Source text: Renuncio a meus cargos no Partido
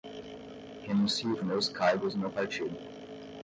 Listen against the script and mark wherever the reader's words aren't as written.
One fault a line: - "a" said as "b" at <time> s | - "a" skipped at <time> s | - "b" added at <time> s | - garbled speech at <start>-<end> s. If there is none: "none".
none